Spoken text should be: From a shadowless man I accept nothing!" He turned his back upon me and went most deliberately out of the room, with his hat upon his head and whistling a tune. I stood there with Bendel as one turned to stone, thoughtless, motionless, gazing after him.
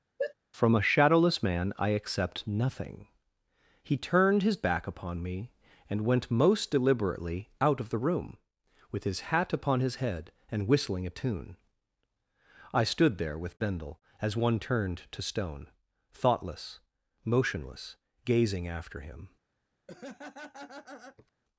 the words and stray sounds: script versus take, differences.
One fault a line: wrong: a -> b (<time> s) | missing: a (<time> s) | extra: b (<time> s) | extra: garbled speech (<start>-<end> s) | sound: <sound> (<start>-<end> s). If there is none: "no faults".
sound: sneeze (0.2-0.3 s)
sound: laugh (19.9-21.3 s)